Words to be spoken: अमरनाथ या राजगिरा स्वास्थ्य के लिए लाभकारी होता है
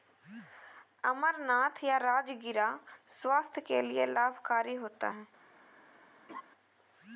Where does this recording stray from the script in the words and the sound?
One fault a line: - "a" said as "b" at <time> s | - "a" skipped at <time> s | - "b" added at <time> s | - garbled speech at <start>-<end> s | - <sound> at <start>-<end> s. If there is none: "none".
- laugh at 6.3-6.4 s